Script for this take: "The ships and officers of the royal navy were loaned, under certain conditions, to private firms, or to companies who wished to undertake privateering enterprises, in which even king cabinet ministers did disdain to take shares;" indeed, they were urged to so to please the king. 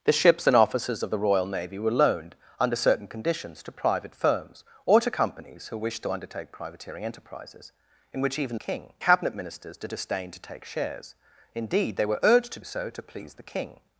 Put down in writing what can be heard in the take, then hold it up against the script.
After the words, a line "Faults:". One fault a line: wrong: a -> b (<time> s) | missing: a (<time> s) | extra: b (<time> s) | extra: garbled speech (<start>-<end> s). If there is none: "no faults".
"The ships and officers of the royal navy were loaned, under certain conditions, to private firms, or to companies who wished to undertake privateering enterprises, in which even king cabinet ministers did disdain to take shares;" indeed, they were urged to so to please the king.
Faults:
no faults